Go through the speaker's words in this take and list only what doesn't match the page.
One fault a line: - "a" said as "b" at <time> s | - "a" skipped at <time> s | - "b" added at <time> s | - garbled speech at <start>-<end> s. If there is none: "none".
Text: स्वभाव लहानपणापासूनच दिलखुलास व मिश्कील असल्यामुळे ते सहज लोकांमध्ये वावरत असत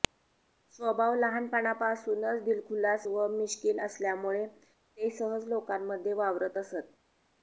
none